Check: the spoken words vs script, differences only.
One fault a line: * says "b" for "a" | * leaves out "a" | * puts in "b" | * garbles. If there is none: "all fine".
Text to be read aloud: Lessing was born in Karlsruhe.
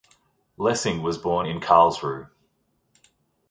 all fine